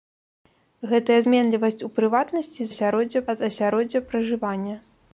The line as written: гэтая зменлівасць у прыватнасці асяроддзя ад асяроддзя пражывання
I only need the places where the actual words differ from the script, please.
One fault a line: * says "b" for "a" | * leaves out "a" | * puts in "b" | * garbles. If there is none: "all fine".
all fine